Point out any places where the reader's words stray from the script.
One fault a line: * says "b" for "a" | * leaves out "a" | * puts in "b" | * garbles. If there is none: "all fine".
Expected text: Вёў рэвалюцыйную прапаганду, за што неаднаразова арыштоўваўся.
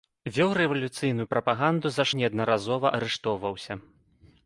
* leaves out "што"